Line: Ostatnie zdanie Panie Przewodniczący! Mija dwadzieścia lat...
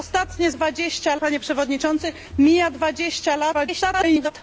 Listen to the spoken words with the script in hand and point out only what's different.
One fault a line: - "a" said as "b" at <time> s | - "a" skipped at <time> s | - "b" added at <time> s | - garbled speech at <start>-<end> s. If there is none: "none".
- "zdanie" said as "dwadzieścia" at 0.5 s
- garbled speech at 3.5-4.3 s